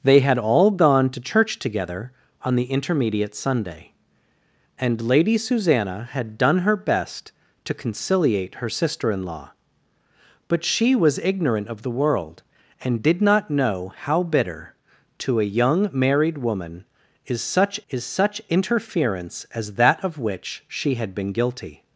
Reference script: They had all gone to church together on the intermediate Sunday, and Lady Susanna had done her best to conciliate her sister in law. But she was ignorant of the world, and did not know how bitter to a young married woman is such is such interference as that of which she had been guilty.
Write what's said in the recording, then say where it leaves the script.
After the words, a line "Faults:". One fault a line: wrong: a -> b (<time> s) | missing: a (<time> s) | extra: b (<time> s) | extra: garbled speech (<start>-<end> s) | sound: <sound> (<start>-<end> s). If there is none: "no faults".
They had all gone to church together on the intermediate Sunday, and Lady Susanna had done her best to conciliate her sister in law. But she was ignorant of the world, and did not know how bitter to a young married woman is such is such interference as that of which she had been guilty.
Faults:
no faults